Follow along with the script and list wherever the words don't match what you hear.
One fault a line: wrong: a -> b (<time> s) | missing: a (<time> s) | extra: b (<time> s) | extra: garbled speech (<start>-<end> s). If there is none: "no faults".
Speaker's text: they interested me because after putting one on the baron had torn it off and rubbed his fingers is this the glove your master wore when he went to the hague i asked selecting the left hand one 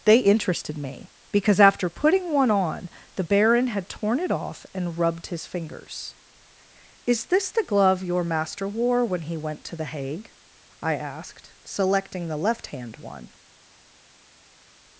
no faults